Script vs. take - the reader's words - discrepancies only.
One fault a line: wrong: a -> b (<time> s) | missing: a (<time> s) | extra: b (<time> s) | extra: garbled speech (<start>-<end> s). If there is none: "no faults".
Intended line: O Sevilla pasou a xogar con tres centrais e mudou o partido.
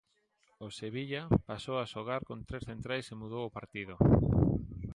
no faults